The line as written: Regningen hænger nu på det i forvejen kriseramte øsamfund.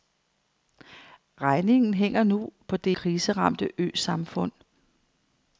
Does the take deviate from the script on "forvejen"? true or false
true